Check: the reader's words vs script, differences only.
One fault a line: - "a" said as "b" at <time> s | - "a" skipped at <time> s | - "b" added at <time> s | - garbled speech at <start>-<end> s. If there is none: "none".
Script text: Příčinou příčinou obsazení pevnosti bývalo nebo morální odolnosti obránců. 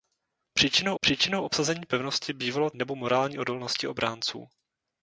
none